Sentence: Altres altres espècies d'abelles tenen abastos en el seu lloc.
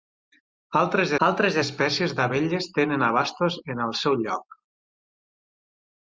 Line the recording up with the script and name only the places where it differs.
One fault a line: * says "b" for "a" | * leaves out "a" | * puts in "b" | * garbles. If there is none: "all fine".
all fine